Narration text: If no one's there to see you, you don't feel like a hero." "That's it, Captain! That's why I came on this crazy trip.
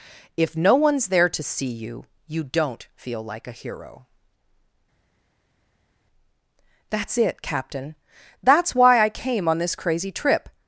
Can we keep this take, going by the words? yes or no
yes